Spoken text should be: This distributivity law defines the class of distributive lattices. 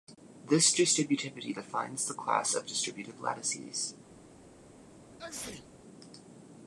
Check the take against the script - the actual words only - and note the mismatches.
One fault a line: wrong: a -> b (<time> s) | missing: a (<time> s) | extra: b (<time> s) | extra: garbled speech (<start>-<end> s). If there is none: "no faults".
missing: law (1.6 s)